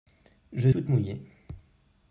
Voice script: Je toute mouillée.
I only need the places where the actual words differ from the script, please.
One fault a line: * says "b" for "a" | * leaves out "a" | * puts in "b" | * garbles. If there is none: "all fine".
all fine